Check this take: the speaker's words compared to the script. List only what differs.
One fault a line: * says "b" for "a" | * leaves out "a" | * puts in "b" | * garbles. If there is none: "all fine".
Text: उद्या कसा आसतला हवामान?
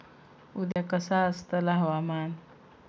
all fine